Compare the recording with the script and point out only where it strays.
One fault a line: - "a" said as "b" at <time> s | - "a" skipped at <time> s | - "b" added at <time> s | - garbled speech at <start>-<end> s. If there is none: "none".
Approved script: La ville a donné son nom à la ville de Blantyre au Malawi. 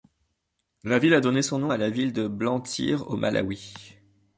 none